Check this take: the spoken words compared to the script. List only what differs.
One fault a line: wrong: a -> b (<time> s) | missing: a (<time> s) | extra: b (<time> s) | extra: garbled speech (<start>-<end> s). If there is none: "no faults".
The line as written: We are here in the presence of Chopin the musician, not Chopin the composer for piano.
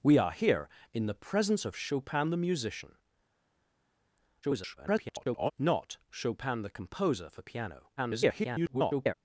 extra: garbled speech (4.4-5.5 s)
extra: garbled speech (8.0-9.1 s)